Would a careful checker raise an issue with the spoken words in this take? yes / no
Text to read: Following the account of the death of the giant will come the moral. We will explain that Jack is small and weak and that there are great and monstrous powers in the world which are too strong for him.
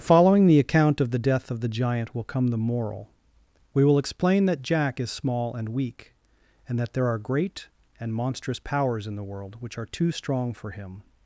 no